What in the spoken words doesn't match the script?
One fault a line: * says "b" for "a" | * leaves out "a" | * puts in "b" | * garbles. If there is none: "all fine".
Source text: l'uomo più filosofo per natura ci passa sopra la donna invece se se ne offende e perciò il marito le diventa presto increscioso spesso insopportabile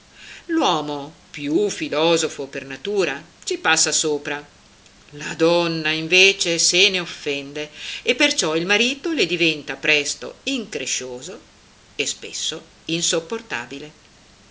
* leaves out "se"
* puts in "e"